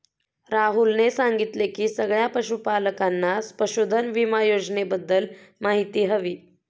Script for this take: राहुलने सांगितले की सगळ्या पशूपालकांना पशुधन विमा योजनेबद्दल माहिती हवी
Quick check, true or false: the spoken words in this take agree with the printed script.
true